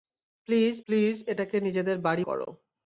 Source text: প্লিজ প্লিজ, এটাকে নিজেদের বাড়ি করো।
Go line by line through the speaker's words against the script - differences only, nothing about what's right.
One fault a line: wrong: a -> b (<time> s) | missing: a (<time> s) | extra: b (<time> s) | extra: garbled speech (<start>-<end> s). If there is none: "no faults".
no faults